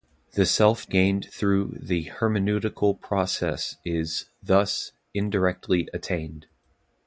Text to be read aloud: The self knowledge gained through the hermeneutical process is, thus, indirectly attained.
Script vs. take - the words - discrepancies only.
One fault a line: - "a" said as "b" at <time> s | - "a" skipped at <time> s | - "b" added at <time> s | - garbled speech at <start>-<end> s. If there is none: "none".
- "knowledge" skipped at 0.9 s